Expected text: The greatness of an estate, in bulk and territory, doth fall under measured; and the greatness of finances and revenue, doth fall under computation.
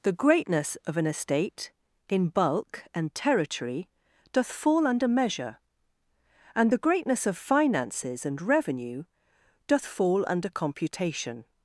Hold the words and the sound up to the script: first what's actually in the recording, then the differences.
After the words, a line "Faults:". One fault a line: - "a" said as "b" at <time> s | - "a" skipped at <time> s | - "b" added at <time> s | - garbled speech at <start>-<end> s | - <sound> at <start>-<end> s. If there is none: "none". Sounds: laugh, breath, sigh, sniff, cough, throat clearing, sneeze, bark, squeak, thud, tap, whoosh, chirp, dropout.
The greatness of an estate, in bulk and territory, doth fall under measure; and the greatness of finances and revenue, doth fall under computation.
Faults:
- "measured" said as "measure" at 5.1 s